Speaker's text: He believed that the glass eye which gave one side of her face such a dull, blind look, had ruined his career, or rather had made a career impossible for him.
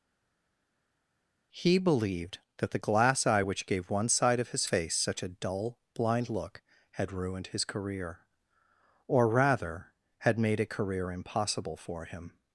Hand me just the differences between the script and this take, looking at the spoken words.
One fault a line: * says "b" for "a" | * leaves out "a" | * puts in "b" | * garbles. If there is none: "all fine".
* says "his" for "her"